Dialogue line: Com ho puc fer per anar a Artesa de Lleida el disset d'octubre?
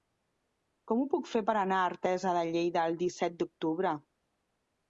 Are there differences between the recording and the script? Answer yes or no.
no